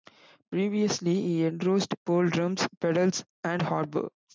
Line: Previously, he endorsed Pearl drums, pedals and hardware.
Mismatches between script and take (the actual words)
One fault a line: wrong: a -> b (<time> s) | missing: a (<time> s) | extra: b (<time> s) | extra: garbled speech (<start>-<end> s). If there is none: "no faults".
no faults